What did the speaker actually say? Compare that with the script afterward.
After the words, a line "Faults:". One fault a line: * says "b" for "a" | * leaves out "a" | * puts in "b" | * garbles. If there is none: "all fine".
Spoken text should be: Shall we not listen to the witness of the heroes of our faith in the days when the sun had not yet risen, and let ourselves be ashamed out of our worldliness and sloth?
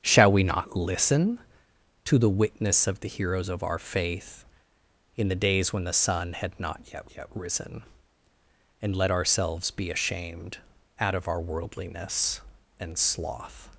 Shall we not listen to the witness of the heroes of our faith in the days when the sun had not yet yet risen, and let ourselves be ashamed out of our worldliness and sloth?
Faults:
* puts in "yet"